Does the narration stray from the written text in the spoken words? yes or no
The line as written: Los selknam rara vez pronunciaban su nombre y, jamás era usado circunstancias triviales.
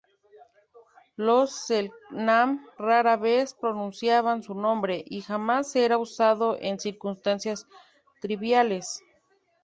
yes